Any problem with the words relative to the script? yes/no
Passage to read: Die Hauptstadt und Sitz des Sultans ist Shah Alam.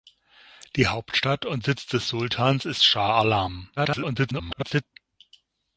yes